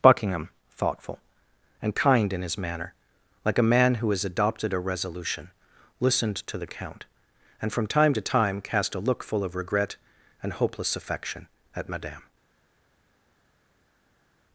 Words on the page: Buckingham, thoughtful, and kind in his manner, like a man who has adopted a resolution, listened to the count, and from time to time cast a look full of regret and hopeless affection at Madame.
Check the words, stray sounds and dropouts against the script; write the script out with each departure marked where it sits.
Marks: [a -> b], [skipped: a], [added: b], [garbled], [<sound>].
Buckingham, thoughtful, and kind in his manner, like a man who has adopted a resolution, listened to the count, and from time to time cast a look full of regret and hopeless affection at Madame.